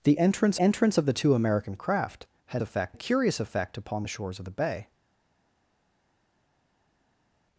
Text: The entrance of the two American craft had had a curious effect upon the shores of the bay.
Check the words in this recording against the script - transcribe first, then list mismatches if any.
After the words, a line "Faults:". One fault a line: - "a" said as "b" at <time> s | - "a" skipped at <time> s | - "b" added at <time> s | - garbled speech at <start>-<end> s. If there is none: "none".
The entrance entrance of the two American craft had effect a curious effect upon the shores of the bay.
Faults:
- "entrance" added at 0.6 s
- "had" said as "effect" at 2.6 s